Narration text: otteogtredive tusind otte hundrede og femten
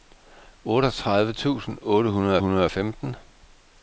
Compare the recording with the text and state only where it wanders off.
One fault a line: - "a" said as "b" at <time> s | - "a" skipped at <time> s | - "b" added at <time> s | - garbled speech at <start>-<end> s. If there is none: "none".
- "hundrede" added at 2.4 s